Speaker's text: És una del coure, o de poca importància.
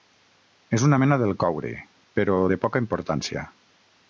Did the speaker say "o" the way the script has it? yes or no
no